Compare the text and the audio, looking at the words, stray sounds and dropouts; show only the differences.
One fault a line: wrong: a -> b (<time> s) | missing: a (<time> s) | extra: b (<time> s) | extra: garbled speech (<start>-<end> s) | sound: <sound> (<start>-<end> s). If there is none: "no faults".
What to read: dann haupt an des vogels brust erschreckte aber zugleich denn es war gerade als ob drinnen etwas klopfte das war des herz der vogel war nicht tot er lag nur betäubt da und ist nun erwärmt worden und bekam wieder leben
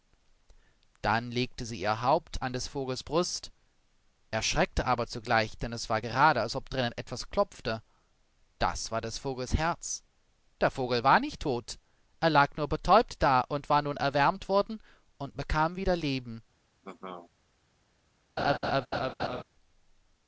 extra: legte sie ihr (1.3 s)
extra: vogels (9.2 s)
wrong: ist -> war (13.7 s)
sound: laugh (16.8-17.3 s)
sound: laugh (18.4-19.4 s)